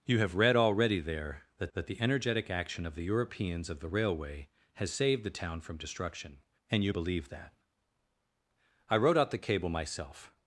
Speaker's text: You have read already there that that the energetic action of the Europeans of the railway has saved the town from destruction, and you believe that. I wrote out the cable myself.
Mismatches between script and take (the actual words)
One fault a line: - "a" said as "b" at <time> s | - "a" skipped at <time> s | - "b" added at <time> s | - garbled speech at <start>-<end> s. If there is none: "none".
none